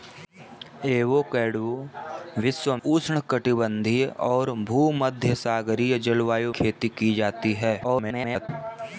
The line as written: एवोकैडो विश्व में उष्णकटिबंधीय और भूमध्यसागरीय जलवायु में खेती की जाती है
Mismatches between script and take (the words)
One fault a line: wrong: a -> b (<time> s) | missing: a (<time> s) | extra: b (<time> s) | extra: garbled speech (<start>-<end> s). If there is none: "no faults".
missing: में (2.8 s)
missing: में (6.5 s)
extra: garbled speech (7.8-8.5 s)